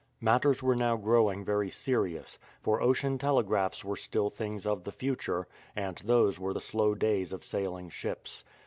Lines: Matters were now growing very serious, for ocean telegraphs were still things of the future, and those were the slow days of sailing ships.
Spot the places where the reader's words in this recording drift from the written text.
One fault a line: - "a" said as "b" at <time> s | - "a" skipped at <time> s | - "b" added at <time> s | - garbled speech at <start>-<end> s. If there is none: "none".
none